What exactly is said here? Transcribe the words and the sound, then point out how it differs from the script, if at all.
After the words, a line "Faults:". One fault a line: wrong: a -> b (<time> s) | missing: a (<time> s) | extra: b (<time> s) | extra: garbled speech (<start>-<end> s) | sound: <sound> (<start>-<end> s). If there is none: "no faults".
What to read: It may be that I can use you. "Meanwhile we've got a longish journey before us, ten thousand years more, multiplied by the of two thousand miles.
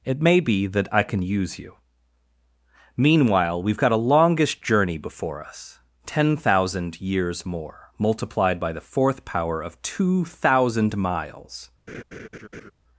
It may be that I can use you. "Meanwhile we've got a longish journey before us, ten thousand years more, multiplied by the fourth power of two thousand miles.
Faults:
extra: fourth power (8.9 s)
sound: laugh (11.9-12.7 s)